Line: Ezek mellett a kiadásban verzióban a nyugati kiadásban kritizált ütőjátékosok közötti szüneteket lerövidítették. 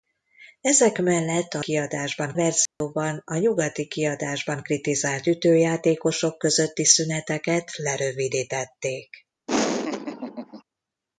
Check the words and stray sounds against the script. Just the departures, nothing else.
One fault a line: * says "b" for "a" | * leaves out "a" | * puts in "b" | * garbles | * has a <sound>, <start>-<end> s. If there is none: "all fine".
* has a dropout, 2.7-2.8 s
* has a laugh, 9.5-10.6 s